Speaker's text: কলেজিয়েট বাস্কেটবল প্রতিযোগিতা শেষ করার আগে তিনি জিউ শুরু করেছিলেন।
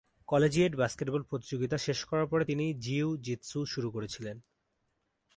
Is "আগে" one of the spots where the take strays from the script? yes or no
yes